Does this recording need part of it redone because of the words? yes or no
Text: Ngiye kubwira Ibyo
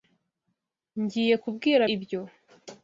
no